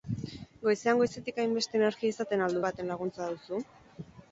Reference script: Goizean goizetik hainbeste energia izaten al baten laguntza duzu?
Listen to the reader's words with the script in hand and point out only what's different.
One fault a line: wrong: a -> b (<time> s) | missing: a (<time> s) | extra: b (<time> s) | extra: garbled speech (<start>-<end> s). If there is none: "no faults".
no faults